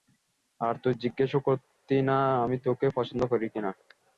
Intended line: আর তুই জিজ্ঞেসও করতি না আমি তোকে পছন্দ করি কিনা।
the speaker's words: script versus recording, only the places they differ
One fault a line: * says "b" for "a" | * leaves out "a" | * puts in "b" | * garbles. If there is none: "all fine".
all fine